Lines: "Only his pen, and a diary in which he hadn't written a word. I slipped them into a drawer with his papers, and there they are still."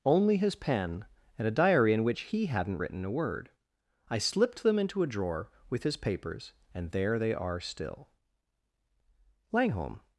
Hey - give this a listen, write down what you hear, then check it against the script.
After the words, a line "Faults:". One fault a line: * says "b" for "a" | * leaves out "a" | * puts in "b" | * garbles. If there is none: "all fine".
"Only his pen, and a diary in which he hadn't written a word. I slipped them into a drawer with his papers, and there they are still." Langholm
Faults:
* puts in "Langholm"